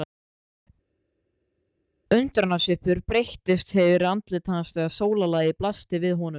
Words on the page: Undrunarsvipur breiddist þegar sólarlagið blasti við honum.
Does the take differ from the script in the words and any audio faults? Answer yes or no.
yes